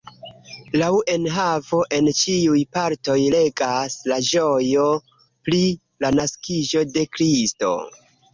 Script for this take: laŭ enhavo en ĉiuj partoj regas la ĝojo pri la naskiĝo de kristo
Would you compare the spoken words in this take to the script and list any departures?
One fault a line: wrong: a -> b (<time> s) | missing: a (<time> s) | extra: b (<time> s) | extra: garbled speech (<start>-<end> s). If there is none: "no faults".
no faults